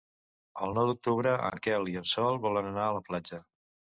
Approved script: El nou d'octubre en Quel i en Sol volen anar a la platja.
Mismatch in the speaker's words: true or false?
false